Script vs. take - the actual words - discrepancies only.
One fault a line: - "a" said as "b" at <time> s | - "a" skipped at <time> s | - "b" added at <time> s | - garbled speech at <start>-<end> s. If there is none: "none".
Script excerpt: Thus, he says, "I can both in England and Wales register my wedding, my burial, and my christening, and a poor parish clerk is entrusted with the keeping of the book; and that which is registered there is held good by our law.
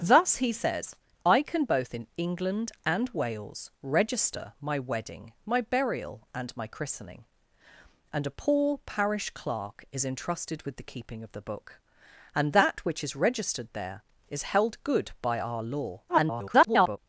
- garbled speech at 16.1-17.0 s